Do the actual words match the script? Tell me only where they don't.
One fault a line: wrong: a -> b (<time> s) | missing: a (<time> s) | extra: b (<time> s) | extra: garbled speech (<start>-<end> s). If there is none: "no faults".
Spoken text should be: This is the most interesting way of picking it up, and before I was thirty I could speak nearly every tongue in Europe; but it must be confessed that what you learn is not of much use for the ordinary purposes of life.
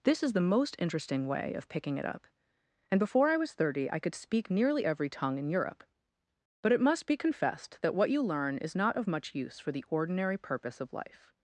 wrong: purposes -> purpose (10.4 s)